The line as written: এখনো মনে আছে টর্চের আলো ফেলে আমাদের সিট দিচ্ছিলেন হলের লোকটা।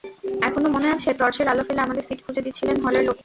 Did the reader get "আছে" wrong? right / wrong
right